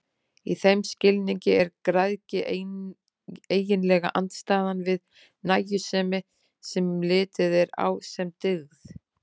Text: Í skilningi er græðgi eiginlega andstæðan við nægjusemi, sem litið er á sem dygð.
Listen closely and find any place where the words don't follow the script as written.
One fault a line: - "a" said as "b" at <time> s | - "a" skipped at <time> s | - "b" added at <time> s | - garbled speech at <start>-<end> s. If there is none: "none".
- "þeim" added at 0.6 s